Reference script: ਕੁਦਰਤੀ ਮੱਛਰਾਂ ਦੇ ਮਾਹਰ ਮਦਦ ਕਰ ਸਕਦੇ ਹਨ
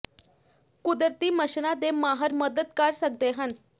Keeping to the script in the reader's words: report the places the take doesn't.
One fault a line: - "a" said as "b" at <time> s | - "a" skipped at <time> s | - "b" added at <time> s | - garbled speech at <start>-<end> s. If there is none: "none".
none